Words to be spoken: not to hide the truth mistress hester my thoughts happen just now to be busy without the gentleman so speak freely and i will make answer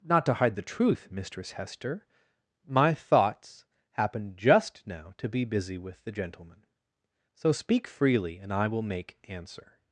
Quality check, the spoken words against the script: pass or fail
fail